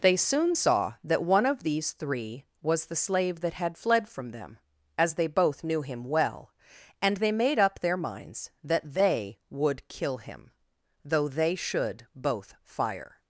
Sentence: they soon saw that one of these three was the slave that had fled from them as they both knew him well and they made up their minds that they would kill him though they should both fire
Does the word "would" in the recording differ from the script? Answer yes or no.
no